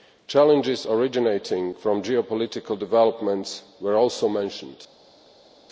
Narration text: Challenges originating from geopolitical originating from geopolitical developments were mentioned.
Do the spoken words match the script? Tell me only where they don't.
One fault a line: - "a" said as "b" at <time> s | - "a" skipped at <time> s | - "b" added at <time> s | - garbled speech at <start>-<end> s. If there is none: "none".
- "originating from geopolitical" skipped at 2.8 s
- "also" added at 4.0 s